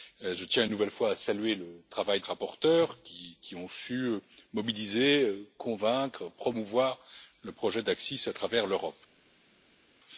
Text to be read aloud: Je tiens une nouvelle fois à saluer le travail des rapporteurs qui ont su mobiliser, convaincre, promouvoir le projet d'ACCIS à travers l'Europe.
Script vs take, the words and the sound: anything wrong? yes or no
yes